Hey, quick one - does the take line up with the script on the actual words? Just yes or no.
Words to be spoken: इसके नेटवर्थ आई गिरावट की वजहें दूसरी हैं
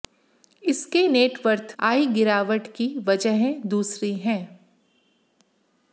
yes